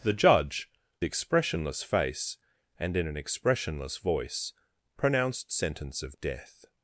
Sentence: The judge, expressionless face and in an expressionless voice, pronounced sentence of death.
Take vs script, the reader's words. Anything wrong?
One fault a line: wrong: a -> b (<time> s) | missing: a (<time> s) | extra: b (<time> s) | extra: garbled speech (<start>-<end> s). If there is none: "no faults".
no faults